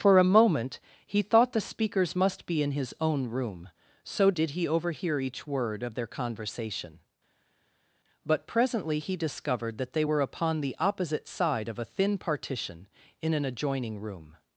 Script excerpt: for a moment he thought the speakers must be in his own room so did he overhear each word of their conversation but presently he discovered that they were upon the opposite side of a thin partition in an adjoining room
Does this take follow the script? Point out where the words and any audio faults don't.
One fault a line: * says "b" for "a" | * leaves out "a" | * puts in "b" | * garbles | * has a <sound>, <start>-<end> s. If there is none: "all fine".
all fine